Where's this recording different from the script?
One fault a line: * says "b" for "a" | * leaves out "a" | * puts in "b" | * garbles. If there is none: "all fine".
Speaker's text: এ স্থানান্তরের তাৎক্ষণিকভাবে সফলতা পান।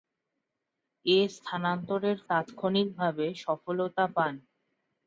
all fine